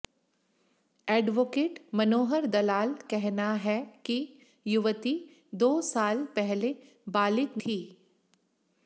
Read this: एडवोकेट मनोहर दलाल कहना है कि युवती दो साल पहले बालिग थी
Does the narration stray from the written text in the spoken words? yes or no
no